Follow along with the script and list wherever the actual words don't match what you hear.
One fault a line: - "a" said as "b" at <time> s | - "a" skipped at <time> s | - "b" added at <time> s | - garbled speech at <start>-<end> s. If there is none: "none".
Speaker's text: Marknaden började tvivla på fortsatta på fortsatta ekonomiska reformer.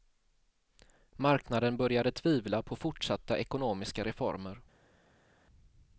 - "på fortsatta" skipped at 3.4 s